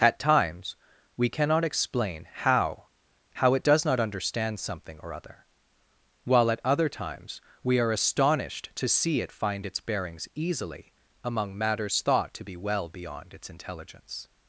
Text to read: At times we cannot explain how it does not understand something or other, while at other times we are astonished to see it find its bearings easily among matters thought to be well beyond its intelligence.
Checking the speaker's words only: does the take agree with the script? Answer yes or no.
no